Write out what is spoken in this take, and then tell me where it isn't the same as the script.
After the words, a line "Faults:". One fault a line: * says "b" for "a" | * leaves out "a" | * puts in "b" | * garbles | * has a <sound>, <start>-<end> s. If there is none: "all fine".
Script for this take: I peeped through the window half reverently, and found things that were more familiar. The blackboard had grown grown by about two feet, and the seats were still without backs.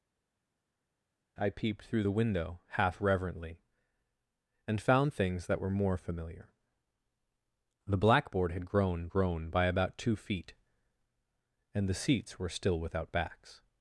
I peeped through the window half reverently, and found things that were more familiar. The blackboard had grown grown by about two feet, and the seats were still without backs.
Faults:
all fine